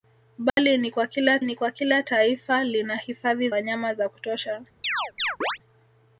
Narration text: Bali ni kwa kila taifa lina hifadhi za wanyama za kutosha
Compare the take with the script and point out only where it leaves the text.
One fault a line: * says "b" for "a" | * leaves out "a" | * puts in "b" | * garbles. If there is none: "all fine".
* puts in "ni kwa kila"
* leaves out "za"